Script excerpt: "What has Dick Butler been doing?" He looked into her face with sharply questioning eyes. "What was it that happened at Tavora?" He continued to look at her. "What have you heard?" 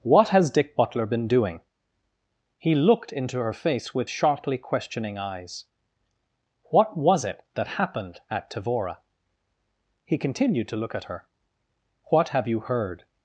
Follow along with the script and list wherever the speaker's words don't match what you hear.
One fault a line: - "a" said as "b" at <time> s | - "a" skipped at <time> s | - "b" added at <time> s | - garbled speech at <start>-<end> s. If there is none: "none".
none